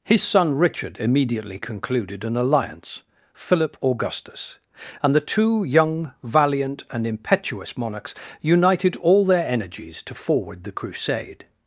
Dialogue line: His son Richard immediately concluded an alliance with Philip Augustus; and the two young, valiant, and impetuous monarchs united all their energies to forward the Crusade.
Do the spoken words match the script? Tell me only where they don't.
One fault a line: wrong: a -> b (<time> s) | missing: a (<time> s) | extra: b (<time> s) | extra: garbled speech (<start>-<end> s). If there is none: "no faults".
missing: with (3.0 s)